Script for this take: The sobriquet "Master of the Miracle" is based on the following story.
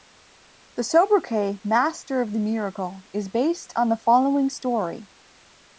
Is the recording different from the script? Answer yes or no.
no